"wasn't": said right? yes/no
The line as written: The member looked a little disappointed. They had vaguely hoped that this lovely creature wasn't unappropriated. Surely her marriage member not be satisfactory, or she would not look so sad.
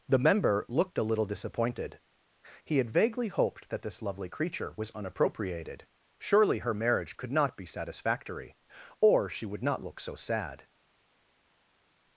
no